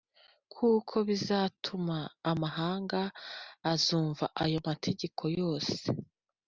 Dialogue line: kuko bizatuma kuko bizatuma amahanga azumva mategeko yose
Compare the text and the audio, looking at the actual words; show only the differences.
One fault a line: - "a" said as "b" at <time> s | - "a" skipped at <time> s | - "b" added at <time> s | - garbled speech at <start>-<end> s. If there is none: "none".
- "kuko bizatuma" skipped at 2.0 s
- "ayo" added at 4.4 s